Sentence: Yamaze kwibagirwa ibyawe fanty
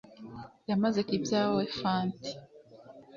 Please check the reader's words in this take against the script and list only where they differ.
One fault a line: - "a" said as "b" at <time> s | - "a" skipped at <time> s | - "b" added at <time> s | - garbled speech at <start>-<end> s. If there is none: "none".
- "kwibagirwa" skipped at 1.0 s